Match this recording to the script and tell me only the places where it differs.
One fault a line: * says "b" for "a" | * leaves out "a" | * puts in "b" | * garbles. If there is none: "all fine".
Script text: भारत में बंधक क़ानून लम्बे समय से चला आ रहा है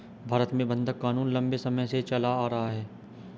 all fine